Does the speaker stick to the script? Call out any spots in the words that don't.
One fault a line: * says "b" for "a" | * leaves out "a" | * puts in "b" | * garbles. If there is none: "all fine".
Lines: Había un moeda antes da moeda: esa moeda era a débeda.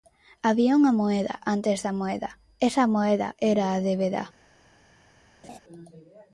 * says "unha" for "un"